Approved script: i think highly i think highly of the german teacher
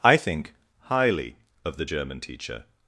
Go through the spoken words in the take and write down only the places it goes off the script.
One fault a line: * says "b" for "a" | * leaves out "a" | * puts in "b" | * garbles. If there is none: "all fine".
* leaves out "i think highly"